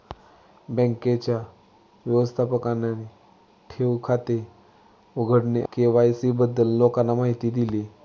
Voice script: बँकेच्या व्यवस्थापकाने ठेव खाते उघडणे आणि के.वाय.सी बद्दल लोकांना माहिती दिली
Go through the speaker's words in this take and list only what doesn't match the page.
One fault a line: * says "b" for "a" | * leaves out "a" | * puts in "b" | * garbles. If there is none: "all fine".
* leaves out "आणि"